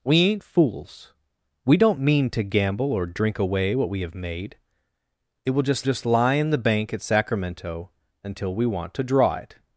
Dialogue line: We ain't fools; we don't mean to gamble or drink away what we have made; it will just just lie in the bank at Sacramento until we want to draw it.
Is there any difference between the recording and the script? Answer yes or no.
no